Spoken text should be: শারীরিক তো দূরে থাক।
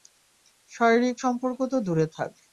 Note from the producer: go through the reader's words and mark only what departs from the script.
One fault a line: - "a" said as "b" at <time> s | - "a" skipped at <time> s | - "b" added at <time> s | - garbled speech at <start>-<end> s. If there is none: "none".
- "সম্পর্ক" added at 1.2 s